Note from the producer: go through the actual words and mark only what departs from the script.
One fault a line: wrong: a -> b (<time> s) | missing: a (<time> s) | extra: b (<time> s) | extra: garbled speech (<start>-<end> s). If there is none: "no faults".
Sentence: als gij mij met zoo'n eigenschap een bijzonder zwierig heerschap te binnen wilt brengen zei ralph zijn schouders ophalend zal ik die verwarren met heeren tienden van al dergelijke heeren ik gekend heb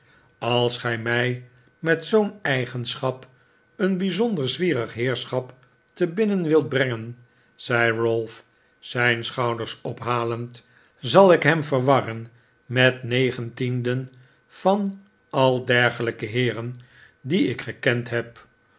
wrong: die -> hem (11.4 s)
wrong: heeren -> negen (13.0 s)
extra: die (17.2 s)